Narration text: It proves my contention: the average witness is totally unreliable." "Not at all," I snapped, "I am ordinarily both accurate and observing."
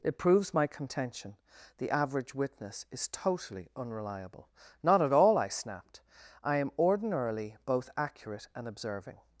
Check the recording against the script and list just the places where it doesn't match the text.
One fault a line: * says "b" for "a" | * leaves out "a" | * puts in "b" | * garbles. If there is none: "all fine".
all fine